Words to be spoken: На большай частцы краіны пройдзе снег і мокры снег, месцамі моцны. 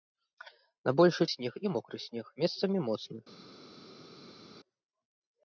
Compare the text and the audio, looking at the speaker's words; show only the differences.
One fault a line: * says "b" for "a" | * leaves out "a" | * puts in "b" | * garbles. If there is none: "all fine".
* leaves out "частцы краіны пройдзе"